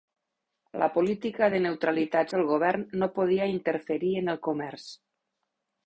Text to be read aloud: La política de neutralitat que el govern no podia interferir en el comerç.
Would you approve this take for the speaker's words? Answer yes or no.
yes